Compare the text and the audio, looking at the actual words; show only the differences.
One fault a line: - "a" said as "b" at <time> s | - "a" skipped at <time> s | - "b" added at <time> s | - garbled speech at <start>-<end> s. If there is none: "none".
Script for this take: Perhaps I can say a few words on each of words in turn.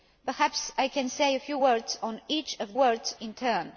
none